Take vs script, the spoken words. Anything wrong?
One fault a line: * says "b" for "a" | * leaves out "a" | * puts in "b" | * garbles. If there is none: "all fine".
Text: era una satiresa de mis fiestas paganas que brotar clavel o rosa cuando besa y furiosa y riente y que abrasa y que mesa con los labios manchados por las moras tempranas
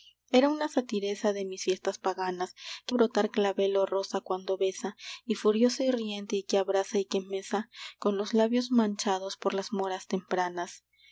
all fine